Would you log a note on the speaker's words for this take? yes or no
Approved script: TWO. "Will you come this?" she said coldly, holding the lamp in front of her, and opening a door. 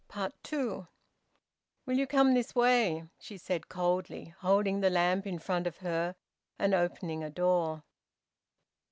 yes